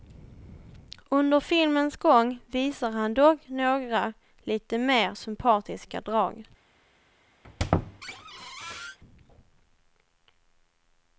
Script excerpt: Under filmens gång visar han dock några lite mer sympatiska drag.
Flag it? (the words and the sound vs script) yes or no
yes